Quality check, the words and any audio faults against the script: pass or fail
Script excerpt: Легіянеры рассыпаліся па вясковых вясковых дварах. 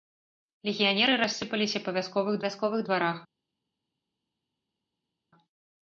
pass